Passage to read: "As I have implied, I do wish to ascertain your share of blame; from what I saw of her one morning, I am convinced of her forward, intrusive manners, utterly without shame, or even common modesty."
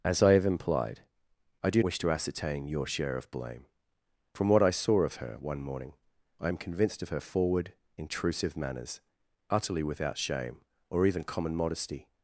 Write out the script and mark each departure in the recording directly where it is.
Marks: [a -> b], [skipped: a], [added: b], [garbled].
"As I have implied, I do wish to ascertain your share of blame; from what I saw of her one morning, I am convinced of her forward, intrusive manners, utterly without shame, or even common modesty."